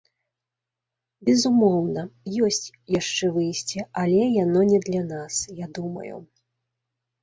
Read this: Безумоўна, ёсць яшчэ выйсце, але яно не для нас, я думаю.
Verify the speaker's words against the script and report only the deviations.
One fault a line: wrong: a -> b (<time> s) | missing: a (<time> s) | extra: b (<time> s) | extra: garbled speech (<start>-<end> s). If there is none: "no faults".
no faults